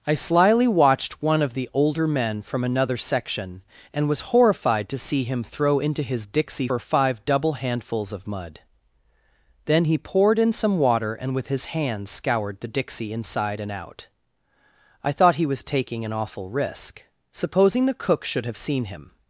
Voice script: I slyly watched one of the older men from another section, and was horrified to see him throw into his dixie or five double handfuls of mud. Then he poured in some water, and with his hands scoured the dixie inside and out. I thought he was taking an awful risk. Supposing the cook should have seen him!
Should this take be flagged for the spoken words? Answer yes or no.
no